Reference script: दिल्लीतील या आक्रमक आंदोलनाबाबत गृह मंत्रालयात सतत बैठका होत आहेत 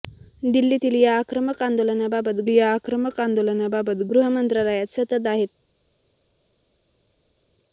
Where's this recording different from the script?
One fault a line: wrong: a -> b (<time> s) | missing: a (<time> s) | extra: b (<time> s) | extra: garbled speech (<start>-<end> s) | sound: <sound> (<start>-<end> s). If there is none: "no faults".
extra: या आक्रमक आंदोलनाबाबत (2.5 s)
missing: बैठका होत (5.3 s)